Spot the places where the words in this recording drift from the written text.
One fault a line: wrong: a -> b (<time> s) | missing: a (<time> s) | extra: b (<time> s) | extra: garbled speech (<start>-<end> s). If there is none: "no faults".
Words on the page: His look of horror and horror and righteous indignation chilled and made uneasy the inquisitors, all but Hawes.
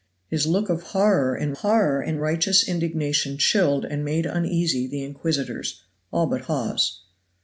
no faults